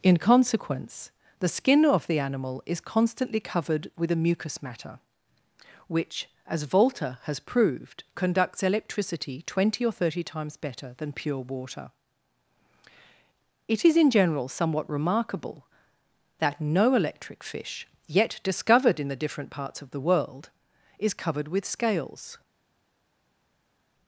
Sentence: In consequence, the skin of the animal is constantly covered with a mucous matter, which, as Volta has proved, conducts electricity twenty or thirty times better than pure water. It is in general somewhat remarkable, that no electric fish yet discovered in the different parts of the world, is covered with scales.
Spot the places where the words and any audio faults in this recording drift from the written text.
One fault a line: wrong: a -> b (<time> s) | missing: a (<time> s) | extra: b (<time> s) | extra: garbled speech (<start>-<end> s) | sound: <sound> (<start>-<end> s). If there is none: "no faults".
no faults